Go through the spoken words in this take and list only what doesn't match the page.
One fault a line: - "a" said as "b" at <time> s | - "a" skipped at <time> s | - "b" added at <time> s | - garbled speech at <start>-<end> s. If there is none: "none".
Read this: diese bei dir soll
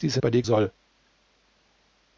none